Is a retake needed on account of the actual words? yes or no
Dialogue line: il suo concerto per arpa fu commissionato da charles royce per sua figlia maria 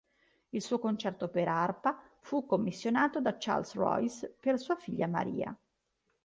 no